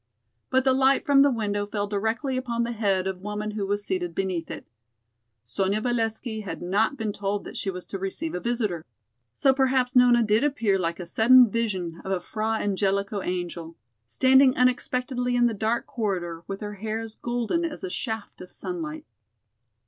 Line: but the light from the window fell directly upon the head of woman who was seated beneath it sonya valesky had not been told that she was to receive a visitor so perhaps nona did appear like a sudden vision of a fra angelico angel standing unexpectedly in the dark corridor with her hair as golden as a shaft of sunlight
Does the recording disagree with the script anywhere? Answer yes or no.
no